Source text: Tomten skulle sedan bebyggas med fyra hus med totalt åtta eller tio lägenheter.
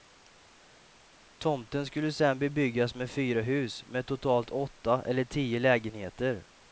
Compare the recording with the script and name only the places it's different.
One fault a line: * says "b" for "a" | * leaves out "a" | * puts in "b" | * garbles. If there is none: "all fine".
all fine